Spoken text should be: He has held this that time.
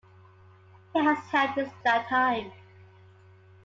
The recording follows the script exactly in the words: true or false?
true